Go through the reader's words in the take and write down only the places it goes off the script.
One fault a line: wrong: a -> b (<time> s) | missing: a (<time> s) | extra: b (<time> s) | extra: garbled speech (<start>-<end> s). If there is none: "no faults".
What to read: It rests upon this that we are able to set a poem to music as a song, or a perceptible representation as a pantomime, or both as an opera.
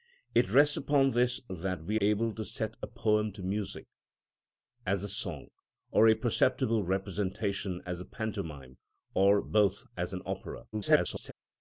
missing: are (2.0 s)
extra: garbled speech (10.7-11.3 s)